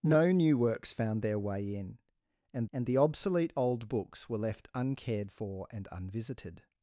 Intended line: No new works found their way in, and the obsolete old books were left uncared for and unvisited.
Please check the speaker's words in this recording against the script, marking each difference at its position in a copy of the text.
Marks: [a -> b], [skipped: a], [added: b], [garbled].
No new works found their way in, and [added: and] the obsolete old books were left uncared for and unvisited.